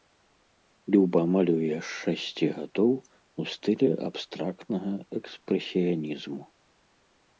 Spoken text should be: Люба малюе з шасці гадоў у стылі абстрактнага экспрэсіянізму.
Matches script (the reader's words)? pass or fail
pass